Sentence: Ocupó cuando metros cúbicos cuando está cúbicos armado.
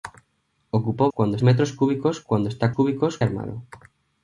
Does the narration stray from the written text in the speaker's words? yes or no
no